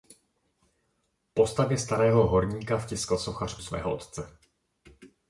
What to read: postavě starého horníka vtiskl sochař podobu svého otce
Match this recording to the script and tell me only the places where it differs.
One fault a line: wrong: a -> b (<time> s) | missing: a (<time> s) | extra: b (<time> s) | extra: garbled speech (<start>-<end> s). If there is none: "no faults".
missing: podobu (3.6 s)